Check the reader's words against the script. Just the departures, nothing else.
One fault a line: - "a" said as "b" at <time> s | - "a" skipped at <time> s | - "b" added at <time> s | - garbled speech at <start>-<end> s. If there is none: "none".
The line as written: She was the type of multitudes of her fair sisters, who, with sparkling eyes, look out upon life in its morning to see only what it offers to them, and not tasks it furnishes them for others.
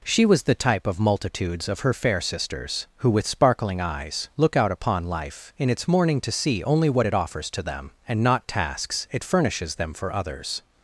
none